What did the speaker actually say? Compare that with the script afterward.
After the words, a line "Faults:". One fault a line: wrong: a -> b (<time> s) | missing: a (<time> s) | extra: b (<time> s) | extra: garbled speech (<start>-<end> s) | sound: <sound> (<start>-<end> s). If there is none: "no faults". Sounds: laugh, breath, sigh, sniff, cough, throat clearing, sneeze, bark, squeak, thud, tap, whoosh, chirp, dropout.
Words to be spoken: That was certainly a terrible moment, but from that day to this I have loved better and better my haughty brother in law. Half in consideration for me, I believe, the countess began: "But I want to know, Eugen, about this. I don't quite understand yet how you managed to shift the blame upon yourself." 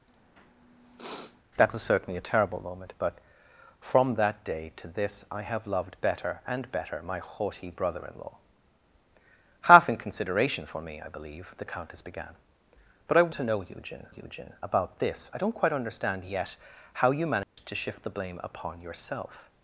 That was certainly a terrible moment, but from that day to this I have loved better and better my haughty brother in law. Half in consideration for me, I believe, the countess began: "But I to know, Eugen Eugen, about this. I don't quite understand yet how you managed to shift the blame upon yourself."
Faults:
sound: sniff (0.1-1.4 s)
missing: want (13.3 s)
extra: Eugen (14.1 s)
sound: dropout (17.4-17.6 s)